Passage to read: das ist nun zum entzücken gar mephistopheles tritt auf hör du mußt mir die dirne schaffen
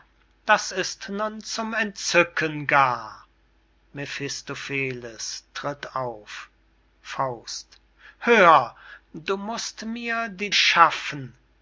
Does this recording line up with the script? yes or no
no